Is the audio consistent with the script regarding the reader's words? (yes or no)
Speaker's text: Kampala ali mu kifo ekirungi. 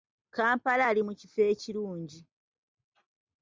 yes